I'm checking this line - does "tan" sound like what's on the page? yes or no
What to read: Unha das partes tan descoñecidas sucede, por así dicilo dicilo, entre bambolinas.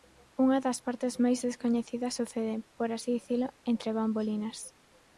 no